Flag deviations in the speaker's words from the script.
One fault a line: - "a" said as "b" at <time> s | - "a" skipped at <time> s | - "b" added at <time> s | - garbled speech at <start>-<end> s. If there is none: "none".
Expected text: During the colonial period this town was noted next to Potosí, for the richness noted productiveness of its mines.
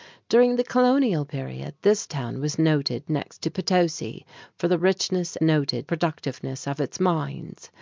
none